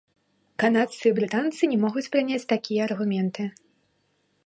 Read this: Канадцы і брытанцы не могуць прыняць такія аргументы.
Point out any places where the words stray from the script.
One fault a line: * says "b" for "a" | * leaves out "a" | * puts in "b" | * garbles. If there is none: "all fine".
all fine